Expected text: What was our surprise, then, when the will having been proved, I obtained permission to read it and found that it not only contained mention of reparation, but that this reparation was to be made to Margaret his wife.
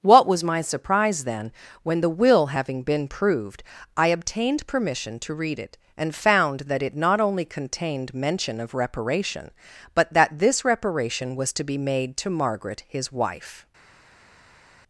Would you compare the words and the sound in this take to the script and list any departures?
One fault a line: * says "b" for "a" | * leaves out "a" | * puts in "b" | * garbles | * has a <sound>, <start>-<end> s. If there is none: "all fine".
* says "my" for "our"